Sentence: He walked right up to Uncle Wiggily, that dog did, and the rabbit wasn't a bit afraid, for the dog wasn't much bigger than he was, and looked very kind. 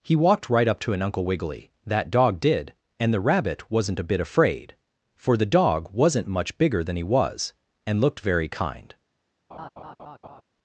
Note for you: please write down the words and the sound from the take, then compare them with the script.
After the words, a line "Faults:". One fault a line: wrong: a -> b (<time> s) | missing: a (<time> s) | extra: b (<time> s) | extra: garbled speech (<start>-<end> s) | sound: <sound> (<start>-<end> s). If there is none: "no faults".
He walked right up to an Uncle Wiggily, that dog did, and the rabbit wasn't a bit afraid, for the dog wasn't much bigger than he was, and looked very kind.
Faults:
extra: an (0.9 s)
sound: laugh (9.5-10.4 s)